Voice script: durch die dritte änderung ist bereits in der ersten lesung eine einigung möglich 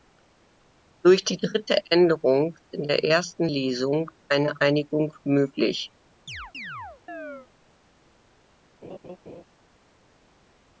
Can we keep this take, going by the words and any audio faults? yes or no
no